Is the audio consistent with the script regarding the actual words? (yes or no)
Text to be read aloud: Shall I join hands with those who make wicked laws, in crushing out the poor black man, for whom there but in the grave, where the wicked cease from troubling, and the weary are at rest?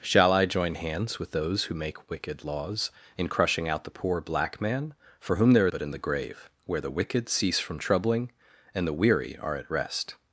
yes